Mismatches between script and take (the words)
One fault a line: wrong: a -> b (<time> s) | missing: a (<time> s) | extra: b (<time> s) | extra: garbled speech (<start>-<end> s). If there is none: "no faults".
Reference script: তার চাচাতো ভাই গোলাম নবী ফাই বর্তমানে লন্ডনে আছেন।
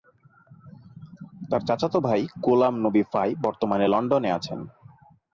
no faults